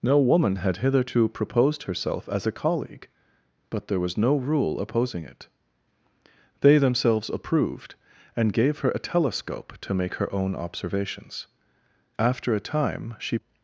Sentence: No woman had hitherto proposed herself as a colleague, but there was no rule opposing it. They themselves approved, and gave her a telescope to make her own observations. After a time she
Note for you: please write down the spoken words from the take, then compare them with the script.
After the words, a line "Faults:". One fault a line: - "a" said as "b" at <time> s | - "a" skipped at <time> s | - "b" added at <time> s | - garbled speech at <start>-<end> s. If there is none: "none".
No woman had hitherto proposed herself as a colleague, but there was no rule opposing it. They themselves approved, and gave her a telescope to make her own observations. After a time she
Faults:
none